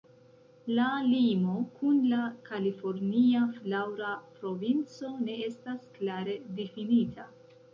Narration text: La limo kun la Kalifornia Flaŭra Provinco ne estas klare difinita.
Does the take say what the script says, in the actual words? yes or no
yes